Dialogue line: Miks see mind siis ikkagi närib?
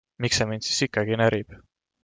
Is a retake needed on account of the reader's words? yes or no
no